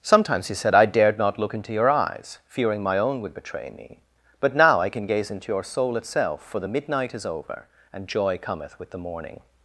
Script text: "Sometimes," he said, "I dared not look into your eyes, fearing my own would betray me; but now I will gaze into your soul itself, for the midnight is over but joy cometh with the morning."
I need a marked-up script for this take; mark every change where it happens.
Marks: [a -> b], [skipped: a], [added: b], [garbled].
"Sometimes," he said, "I dared not look into your eyes, fearing my own would betray me; but now I [will -> can] gaze into your soul itself, for the midnight is over [but -> and] joy cometh with the morning."